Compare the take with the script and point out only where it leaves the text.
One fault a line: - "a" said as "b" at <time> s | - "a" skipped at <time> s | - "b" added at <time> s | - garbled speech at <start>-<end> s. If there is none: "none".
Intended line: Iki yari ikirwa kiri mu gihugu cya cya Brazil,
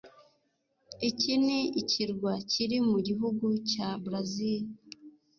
- "yari" said as "ni" at 1.4 s
- "cya" skipped at 3.9 s